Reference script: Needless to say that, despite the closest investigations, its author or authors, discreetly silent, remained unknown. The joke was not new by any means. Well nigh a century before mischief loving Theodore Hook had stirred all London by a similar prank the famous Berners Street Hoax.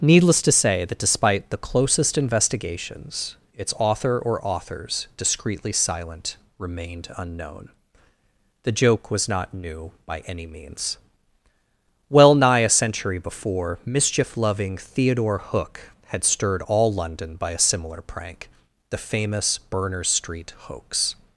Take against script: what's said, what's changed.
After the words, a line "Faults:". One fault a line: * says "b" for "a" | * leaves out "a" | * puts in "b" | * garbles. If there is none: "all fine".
Needless to say that, despite the closest investigations, its author or authors, discreetly silent, remained unknown. The joke was not new by any means. Well nigh a century before mischief loving Theodore Hook had stirred all London by a similar prank the famous Berners Street Hoax.
Faults:
all fine